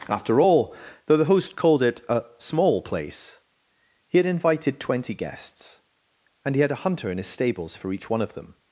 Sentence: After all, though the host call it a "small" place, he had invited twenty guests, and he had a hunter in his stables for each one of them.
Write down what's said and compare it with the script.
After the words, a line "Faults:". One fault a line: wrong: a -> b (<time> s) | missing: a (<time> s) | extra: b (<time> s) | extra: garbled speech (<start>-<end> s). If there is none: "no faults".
After all, though the host called it a "small" place, he had invited twenty guests, and he had a hunter in his stables for each one of them.
Faults:
wrong: call -> called (1.6 s)